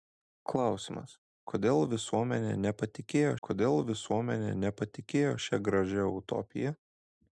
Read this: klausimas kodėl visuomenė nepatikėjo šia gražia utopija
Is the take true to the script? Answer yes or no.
no